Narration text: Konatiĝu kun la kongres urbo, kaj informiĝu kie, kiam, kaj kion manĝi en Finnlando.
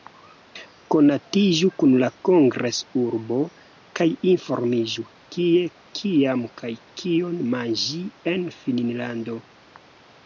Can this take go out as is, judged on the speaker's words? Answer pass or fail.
pass